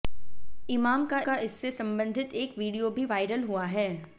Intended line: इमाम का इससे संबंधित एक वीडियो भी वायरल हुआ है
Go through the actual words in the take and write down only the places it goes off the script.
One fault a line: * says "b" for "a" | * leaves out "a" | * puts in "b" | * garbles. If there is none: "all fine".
* puts in "का"